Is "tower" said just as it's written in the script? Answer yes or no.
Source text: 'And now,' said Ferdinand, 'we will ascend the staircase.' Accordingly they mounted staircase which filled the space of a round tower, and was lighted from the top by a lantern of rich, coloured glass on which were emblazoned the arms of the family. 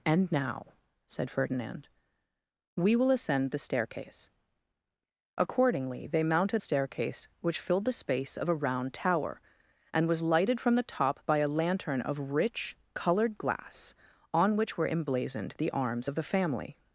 yes